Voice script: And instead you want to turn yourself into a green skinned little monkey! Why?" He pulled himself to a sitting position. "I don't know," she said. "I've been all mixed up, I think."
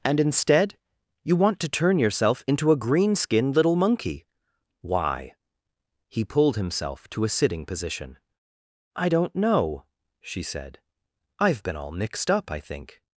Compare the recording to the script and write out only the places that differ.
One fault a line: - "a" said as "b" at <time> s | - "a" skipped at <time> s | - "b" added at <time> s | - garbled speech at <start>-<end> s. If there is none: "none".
none